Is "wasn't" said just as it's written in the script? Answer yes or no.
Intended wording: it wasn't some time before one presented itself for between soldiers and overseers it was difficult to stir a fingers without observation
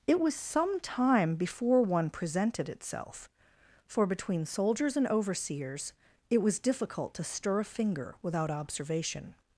no